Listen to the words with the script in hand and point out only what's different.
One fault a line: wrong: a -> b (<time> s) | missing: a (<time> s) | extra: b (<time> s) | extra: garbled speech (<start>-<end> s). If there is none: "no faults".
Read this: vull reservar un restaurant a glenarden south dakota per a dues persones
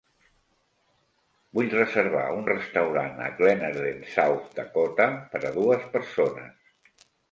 no faults